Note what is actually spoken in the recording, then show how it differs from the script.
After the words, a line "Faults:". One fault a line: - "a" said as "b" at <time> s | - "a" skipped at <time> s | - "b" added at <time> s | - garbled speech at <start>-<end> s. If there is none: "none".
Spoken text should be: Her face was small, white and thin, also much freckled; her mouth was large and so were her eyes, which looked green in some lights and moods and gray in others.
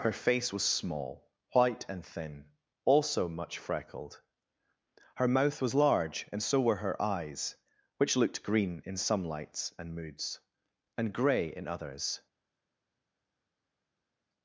Her face was small, white and thin, also much freckled; her mouth was large and so were her eyes, which looked green in some lights and moods and gray in others.
Faults:
none